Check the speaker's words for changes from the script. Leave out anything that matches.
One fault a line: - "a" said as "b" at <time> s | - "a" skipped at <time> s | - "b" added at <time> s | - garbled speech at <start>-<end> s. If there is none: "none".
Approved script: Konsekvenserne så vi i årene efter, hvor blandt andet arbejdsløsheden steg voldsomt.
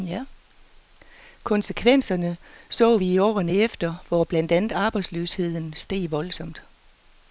none